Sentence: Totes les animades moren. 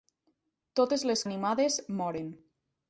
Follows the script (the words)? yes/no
yes